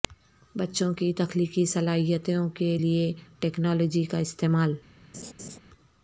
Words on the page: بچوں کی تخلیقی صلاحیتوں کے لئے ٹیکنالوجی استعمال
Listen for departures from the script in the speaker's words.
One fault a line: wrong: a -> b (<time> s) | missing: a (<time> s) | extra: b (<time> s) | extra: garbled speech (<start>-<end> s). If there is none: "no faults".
extra: کا (4.0 s)